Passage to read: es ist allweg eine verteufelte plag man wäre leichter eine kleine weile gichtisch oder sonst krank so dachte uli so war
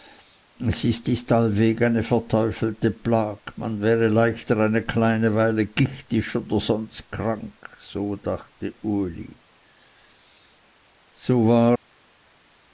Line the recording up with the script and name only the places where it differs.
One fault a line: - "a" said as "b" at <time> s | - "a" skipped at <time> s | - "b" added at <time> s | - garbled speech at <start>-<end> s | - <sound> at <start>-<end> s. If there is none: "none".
- "ist" added at 1.1 s